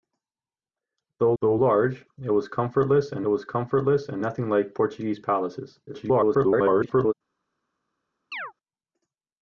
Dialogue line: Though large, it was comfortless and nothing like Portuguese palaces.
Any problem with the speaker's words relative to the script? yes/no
yes